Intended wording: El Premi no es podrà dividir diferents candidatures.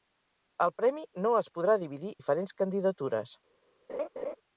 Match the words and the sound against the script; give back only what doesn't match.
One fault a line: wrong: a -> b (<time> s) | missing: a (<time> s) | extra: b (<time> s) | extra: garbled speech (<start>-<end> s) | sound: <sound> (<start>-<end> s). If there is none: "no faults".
sound: laugh (3.9-4.4 s)